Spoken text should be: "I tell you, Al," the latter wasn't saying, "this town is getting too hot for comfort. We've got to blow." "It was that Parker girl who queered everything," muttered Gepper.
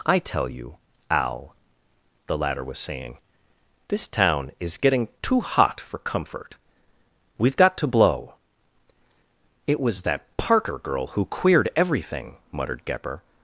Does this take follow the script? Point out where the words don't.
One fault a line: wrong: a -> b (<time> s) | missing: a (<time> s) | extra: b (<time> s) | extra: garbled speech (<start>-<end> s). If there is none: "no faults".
wrong: wasn't -> was (2.6 s)